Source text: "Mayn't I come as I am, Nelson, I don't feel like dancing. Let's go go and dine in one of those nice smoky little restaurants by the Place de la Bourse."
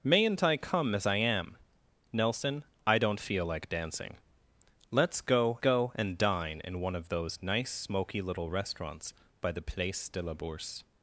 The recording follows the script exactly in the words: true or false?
true